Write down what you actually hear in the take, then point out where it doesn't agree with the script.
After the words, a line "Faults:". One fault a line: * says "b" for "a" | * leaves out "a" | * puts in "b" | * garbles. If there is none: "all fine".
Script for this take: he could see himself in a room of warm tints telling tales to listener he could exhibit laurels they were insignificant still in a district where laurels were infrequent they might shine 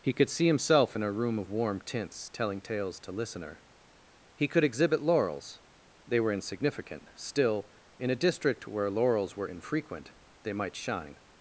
he could see himself in a room of warm tints telling tales to listener he could exhibit laurels they were insignificant still in a district where laurels were infrequent they might shine
Faults:
all fine